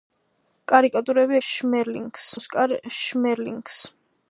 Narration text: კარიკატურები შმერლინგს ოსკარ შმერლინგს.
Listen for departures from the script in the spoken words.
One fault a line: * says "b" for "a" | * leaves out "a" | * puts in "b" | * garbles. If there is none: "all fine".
all fine